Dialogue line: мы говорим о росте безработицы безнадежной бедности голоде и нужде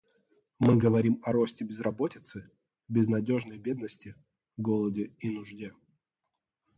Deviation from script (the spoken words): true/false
false